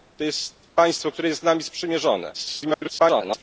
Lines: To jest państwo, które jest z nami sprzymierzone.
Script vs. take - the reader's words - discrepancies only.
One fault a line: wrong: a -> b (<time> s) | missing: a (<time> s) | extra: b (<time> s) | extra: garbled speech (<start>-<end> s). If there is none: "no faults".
extra: garbled speech (2.3-3.4 s)